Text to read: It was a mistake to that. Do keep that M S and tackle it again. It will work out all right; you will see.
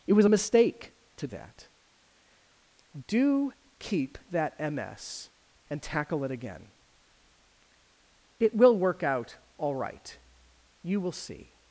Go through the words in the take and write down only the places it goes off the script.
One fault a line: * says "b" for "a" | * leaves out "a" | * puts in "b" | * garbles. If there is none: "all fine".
all fine